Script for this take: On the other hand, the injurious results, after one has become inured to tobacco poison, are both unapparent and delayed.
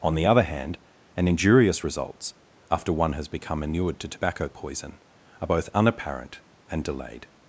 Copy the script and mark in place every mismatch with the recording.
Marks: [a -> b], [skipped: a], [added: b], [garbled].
On the other hand, [the -> an] injurious results, after one has become inured to tobacco poison, are both unapparent and delayed.